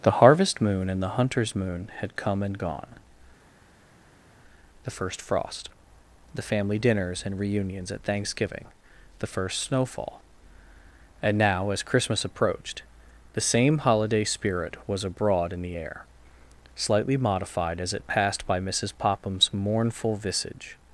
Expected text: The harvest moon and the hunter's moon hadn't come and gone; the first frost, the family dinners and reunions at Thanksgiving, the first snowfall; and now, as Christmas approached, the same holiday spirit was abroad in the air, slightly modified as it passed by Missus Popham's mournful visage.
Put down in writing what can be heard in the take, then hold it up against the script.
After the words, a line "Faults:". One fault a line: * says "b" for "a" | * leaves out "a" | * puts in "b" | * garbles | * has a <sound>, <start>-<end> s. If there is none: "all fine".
The harvest moon and the hunter's moon had come and gone; the first frost, the family dinners and reunions at Thanksgiving, the first snowfall; and now, as Christmas approached, the same holiday spirit was abroad in the air, slightly modified as it passed by Missus Popham's mournful visage.
Faults:
* says "had" for "hadn't"